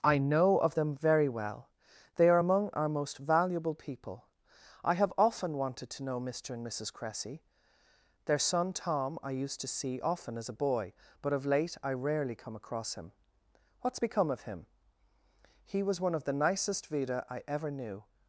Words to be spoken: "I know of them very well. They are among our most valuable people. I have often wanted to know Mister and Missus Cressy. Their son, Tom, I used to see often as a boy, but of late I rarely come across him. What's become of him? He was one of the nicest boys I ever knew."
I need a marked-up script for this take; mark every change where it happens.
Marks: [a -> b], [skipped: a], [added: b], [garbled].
"I know of them very well. They are among our most valuable people. I have often wanted to know Mister and Missus Cressy. Their son, Tom, I used to see often as a boy, but of late I rarely come across him. What's become of him? He was one of the nicest [boys -> vida] I ever knew."